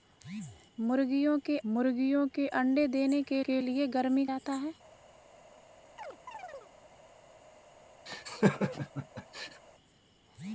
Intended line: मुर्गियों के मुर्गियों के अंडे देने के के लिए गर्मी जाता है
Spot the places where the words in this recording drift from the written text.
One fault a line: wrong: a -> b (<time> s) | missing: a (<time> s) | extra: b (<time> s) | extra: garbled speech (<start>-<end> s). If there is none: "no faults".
no faults